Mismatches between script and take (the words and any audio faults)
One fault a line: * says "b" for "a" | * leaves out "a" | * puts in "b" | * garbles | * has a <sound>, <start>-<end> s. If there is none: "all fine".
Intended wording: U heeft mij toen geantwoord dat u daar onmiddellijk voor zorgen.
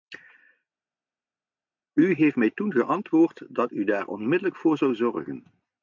* puts in "zou"